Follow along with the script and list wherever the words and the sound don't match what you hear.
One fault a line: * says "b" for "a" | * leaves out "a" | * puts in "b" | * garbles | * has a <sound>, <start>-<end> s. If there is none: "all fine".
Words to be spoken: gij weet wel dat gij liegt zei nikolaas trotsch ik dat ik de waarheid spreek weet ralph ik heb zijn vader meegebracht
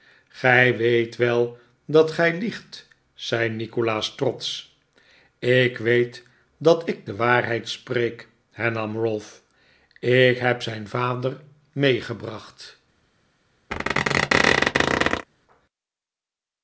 * puts in "weet"
* says "hernam" for "weet"
* has a squeak, 13.7-15.3 s